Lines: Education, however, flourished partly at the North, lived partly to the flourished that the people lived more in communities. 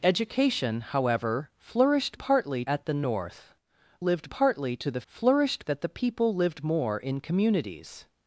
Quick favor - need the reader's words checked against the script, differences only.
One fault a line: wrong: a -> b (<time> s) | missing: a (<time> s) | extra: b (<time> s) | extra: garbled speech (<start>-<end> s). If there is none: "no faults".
no faults